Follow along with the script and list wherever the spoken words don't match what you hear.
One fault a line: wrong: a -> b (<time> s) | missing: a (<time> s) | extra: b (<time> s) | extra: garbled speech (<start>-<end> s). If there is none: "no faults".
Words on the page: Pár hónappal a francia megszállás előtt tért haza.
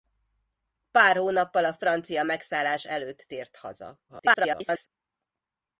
extra: garbled speech (4.1-4.9 s)